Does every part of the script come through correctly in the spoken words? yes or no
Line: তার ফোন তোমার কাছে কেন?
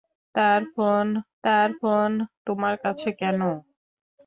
no